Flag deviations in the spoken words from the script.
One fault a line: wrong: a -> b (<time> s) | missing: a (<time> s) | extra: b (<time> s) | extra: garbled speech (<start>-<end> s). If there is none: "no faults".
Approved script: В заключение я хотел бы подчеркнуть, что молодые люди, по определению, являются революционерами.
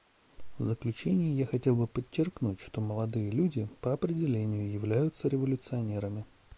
no faults